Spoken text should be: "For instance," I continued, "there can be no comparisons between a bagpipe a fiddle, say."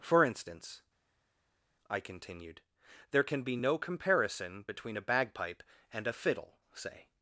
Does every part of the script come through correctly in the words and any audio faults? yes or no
no